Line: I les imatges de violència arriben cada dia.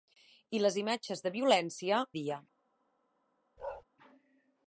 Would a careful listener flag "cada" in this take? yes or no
yes